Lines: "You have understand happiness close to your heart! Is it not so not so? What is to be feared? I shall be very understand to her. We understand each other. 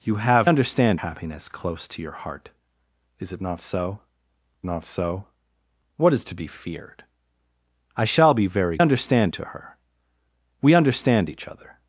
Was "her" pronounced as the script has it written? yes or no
yes